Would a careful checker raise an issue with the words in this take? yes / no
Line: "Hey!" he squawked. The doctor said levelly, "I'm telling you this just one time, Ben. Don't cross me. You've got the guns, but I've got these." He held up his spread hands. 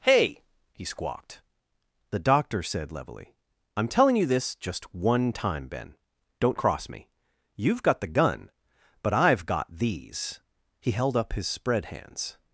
yes